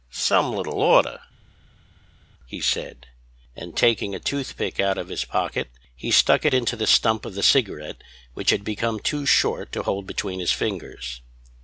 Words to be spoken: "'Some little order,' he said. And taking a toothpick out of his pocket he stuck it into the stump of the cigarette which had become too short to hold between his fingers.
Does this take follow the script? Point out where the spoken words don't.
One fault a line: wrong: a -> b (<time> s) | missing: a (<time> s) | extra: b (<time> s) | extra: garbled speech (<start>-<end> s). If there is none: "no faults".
no faults